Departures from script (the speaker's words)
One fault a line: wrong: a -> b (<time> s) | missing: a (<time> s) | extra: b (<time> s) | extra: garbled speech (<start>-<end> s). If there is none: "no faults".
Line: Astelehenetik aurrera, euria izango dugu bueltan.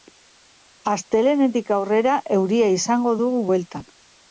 no faults